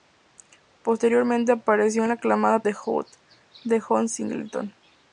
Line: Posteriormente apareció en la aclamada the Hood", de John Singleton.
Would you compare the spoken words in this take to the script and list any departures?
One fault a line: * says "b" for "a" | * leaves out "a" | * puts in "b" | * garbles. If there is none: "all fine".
all fine